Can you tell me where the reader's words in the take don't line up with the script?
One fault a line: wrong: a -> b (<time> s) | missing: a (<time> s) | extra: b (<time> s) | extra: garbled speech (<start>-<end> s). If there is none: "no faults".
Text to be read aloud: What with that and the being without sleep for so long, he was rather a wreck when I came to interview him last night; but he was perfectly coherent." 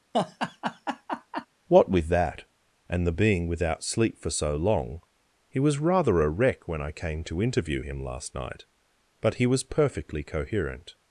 no faults